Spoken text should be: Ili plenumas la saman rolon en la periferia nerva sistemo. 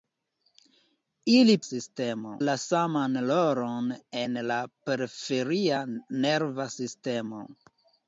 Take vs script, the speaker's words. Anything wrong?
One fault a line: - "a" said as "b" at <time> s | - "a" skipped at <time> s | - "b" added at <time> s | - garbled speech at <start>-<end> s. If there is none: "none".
- "plenumas" said as "sistemo" at 1.7 s